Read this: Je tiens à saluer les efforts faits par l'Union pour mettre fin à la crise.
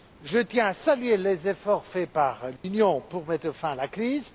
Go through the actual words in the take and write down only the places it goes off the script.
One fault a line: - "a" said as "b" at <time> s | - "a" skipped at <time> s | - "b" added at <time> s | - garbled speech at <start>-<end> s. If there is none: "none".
none